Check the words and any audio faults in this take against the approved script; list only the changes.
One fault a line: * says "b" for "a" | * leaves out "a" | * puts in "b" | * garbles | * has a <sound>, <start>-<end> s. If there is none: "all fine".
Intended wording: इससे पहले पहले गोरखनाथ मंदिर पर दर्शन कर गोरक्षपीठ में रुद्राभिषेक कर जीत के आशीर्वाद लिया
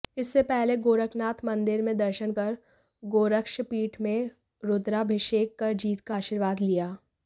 * leaves out "पहले"
* says "में" for "पर"
* says "का" for "के"